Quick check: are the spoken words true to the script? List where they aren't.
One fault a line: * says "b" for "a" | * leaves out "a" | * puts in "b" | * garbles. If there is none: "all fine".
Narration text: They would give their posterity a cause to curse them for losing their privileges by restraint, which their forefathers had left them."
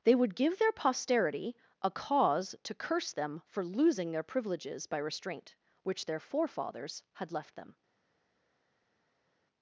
all fine